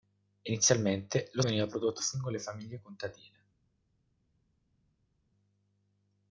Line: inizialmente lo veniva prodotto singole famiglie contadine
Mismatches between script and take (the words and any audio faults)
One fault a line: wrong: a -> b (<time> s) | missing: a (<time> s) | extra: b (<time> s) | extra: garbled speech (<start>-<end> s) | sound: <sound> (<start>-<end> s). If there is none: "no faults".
no faults